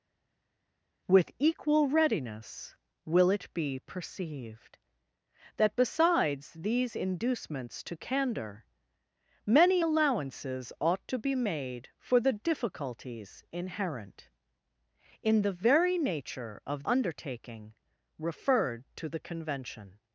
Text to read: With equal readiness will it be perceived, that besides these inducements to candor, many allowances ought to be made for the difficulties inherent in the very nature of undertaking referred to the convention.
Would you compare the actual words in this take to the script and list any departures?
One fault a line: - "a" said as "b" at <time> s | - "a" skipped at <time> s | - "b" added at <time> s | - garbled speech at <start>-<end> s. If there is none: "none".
none